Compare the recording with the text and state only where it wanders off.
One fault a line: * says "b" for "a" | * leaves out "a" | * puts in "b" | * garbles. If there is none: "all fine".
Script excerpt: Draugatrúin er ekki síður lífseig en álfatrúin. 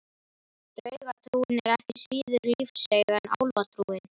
all fine